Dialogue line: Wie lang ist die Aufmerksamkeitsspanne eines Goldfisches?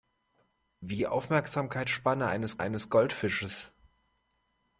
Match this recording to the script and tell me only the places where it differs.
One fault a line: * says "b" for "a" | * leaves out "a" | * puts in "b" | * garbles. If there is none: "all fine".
* leaves out "lang ist"
* puts in "eines"